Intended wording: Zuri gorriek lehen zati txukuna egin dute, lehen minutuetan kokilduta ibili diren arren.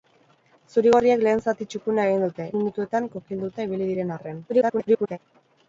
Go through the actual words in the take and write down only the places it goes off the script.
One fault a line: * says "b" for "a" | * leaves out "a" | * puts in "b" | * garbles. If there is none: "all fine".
* leaves out "lehen"
* garbles